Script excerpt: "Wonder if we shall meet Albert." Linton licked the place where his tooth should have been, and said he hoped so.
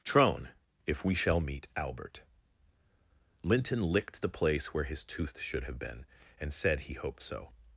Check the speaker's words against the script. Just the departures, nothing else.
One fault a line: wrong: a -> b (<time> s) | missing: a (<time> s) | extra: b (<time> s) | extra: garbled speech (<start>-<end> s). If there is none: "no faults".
wrong: Wonder -> Trone (0.0 s)